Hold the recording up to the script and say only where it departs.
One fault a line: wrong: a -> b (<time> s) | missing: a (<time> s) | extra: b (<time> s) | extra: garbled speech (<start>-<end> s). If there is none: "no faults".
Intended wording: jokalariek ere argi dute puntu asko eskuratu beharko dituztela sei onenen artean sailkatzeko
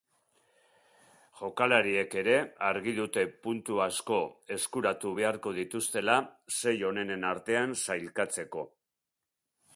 no faults